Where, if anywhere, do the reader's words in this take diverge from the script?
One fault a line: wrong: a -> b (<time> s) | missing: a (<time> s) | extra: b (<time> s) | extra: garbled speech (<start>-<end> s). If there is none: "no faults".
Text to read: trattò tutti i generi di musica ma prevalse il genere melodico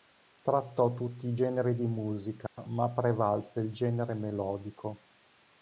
no faults